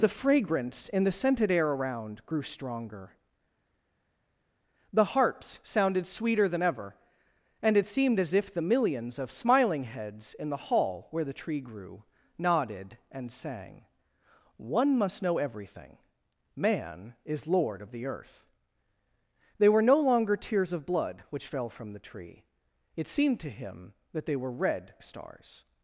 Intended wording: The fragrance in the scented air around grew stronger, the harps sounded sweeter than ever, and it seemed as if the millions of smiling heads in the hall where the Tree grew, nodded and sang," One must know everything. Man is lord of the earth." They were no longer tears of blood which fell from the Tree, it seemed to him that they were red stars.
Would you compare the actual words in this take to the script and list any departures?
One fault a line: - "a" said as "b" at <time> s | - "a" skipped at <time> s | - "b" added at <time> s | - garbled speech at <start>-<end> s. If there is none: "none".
none